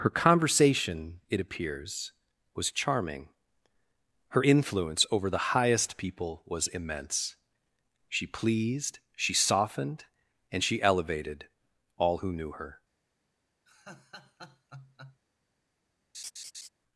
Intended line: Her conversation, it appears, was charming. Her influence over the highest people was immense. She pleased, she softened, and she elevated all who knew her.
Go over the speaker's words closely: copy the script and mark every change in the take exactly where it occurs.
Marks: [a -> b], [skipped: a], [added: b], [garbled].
Her conversation, it appears, was charming. Her influence over the highest people was immense. She pleased, she softened, and she elevated all who knew her.